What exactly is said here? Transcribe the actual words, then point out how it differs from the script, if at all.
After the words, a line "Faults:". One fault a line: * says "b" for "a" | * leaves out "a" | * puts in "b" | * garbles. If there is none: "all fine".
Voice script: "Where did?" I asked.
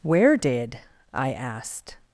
"Where did?" I asked.
Faults:
all fine